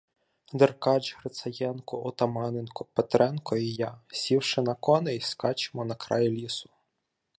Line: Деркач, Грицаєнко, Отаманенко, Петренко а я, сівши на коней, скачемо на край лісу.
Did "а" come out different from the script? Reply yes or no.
yes